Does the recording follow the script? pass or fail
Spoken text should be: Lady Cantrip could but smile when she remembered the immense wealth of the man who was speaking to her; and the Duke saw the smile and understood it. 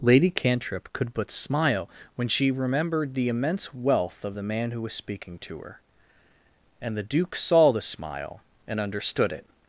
pass